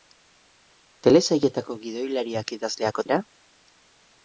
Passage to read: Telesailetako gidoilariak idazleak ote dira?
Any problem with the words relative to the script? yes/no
yes